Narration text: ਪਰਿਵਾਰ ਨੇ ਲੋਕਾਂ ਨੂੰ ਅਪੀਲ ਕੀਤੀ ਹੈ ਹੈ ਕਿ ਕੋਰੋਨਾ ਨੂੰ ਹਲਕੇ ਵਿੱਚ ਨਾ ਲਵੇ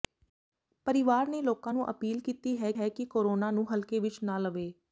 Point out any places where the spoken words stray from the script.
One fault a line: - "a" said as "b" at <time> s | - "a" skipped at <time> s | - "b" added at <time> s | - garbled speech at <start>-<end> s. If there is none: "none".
none